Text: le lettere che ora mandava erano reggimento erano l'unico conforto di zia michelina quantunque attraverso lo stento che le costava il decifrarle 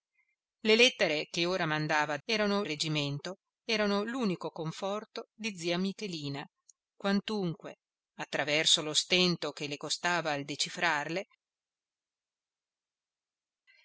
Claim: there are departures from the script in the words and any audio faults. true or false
false